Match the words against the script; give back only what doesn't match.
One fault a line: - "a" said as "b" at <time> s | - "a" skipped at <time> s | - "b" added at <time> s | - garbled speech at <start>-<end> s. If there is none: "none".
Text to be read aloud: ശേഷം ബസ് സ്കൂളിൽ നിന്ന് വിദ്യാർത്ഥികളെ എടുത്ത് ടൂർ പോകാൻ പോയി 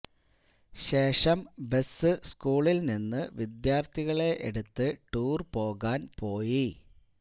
none